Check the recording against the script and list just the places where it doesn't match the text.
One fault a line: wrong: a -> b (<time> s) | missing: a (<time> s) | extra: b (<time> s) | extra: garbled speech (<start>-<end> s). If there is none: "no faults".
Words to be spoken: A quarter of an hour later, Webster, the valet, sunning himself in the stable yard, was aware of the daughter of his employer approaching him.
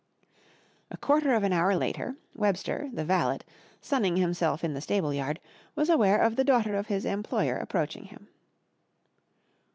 no faults